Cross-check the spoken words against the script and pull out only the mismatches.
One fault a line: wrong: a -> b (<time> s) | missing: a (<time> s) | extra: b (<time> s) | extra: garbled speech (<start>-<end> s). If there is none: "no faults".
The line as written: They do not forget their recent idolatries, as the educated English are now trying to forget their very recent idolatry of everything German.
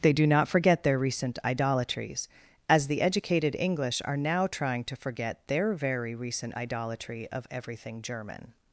no faults